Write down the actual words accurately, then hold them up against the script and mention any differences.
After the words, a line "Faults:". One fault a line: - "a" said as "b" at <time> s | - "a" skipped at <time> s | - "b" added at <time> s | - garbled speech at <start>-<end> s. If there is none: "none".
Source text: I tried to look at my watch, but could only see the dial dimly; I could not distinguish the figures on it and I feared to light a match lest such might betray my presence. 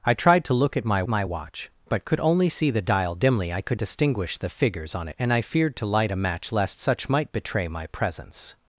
I tried to look at my my watch, but could only see the dial dimly; I could distinguish the figures on it and I feared to light a match lest such might betray my presence.
Faults:
- "my" added at 1.1 s
- "not" skipped at 3.8 s